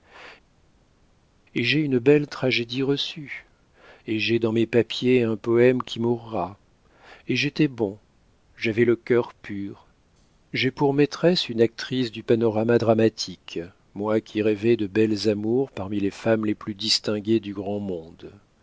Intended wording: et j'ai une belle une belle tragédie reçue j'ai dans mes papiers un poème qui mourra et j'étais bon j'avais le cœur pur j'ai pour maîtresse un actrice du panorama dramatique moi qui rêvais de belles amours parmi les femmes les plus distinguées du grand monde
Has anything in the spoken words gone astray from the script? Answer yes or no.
yes